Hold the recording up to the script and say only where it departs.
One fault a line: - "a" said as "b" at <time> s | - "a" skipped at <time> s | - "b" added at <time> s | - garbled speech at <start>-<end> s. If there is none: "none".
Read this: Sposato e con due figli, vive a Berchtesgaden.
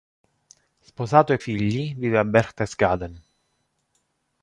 - "con due" skipped at 1.4 s